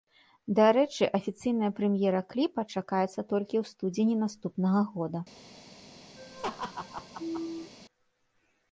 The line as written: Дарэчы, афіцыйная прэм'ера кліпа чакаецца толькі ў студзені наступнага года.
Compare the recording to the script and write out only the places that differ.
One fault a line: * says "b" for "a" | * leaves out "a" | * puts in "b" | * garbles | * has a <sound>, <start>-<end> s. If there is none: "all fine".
* has a laugh, 6.2-7.7 s